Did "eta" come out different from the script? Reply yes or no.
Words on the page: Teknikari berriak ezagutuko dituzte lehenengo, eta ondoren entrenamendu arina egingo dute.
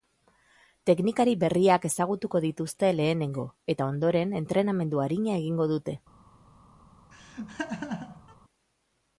no